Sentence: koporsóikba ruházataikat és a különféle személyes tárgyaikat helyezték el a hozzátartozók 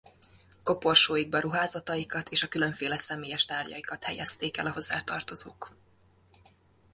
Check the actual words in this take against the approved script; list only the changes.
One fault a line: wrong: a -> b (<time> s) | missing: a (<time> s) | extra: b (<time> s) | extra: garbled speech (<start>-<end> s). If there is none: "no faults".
no faults